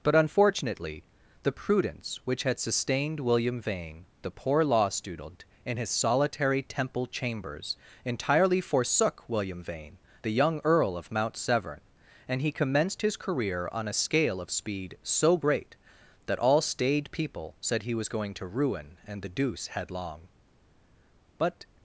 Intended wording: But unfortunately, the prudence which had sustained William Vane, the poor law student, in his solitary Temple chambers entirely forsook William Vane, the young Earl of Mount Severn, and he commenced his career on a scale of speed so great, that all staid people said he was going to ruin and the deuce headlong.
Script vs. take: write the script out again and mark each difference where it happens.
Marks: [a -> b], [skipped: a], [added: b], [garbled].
But unfortunately, the prudence which had sustained William Vane, the poor law student, in his solitary Temple chambers entirely forsook William Vane, the young Earl of Mount Severn, and he commenced his career on a scale of speed so great, that all staid people said he was going to ruin and the deuce headlong. [added: But]